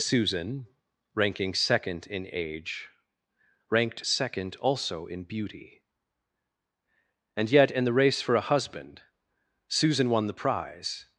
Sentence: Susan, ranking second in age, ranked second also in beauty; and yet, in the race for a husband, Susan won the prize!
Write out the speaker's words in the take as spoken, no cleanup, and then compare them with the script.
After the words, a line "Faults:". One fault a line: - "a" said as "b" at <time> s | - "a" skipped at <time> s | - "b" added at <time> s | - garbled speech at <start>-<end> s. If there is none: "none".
Susan, ranking second in age, ranked second also in beauty; and yet, in the race for a husband, Susan won the prize!
Faults:
none